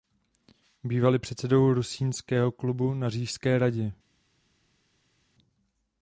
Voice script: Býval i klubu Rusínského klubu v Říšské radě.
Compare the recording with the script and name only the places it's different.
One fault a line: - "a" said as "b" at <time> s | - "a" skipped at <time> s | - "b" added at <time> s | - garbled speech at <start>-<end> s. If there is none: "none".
- "klubu" said as "předsedou" at 1.2 s
- "v" said as "na" at 2.9 s